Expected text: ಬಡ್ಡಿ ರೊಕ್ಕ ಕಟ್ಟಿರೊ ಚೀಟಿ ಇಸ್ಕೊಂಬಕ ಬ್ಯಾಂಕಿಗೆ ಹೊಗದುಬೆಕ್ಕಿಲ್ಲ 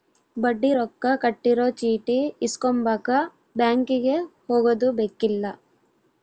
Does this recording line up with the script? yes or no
yes